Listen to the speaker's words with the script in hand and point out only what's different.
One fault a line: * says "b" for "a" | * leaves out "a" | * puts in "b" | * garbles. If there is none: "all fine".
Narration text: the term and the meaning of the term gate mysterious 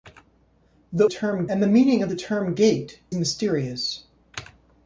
all fine